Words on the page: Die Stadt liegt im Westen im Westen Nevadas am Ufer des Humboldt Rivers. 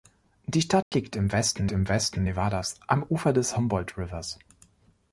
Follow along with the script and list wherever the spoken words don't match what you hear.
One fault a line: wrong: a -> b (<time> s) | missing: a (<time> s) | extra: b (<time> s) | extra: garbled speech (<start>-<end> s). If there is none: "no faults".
no faults